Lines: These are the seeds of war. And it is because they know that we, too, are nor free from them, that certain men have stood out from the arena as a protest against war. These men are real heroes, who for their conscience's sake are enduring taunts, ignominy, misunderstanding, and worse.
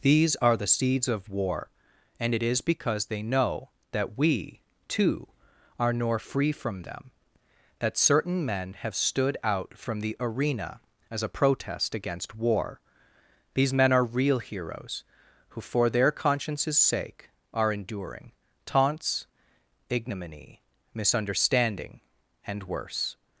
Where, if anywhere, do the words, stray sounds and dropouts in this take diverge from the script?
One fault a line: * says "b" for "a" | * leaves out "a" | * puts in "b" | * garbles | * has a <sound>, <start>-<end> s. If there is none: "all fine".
all fine